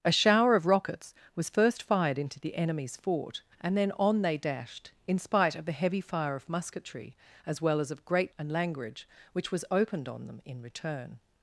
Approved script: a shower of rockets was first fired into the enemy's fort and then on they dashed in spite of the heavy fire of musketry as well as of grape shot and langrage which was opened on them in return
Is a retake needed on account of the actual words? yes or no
yes